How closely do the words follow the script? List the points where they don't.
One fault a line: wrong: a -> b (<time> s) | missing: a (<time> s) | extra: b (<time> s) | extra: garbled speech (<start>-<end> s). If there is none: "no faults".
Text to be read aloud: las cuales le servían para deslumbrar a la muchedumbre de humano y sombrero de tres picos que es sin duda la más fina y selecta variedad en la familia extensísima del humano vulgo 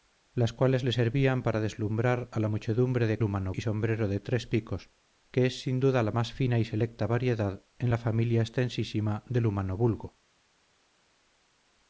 no faults